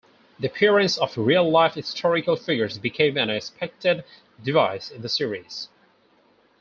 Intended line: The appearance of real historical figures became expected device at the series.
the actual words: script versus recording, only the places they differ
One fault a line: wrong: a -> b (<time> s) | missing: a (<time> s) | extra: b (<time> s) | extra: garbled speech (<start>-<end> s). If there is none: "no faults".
extra: life (1.5 s)
extra: an (3.2 s)
wrong: at -> in (4.9 s)